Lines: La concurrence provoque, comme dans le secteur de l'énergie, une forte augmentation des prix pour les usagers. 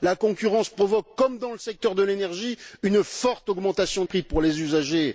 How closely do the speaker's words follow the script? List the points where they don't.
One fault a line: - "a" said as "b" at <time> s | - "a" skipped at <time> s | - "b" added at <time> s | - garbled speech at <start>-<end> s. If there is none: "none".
- "des" skipped at 4.0 s